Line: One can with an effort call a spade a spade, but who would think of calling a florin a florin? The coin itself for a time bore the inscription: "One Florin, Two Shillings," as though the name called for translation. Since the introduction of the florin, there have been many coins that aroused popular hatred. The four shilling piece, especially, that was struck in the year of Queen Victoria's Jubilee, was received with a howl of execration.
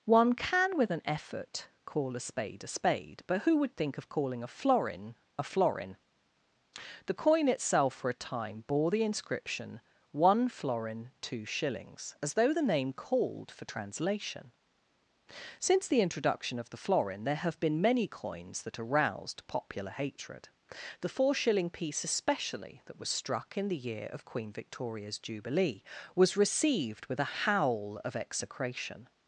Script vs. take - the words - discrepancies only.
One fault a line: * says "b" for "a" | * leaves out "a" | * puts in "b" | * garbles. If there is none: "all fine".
all fine